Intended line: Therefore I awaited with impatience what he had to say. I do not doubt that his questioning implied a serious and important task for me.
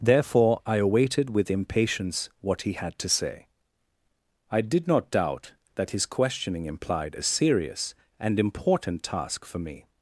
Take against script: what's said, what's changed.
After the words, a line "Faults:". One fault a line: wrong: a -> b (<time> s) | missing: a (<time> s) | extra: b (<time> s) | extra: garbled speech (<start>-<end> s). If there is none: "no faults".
Therefore I awaited with impatience what he had to say. I did not doubt that his questioning implied a serious and important task for me.
Faults:
wrong: do -> did (4.6 s)